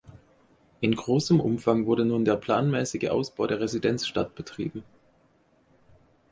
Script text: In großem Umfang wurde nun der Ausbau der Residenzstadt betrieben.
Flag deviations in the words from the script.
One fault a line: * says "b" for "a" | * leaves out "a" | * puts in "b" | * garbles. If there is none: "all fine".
* puts in "planmäßige"